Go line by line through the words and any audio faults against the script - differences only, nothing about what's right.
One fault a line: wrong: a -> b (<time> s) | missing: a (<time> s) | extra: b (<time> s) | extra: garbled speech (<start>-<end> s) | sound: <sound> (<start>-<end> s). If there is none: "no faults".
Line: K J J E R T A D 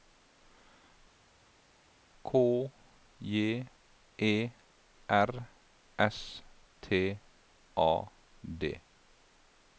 missing: J (3.7 s)
extra: S (6.0 s)